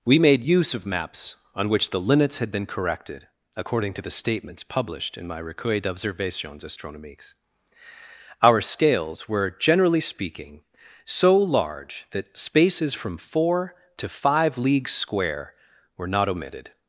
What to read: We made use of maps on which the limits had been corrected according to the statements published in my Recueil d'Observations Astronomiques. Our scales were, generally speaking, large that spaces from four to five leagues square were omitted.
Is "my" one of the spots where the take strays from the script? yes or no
no